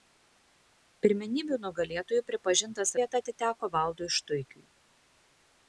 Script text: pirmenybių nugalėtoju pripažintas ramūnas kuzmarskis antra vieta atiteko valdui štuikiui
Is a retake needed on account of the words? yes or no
yes